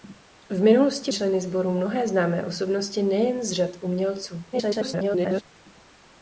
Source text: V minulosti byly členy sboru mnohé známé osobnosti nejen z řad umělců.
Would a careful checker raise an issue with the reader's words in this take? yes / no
yes